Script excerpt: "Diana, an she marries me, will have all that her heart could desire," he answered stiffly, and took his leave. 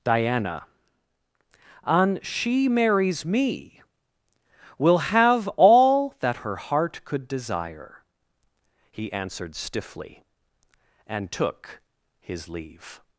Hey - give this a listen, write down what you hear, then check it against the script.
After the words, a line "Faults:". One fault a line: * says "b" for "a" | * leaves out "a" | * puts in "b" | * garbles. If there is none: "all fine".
"Diana, an she marries me, will have all that her heart could desire," he answered stiffly, and took his leave.
Faults:
all fine